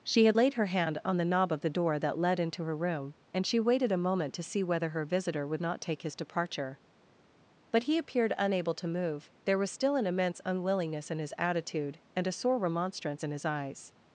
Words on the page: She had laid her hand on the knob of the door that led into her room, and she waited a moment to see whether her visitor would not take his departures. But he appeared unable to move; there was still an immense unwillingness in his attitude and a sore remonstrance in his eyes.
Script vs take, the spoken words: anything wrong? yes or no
yes